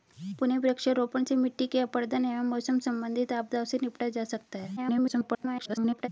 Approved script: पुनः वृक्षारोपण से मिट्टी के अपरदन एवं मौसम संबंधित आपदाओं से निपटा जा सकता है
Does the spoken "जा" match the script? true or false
true